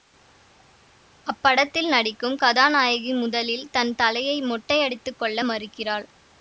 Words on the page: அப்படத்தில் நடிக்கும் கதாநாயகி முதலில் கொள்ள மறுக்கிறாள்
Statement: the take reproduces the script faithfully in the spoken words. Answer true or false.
false